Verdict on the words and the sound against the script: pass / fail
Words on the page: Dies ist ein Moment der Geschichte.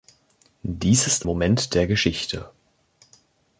fail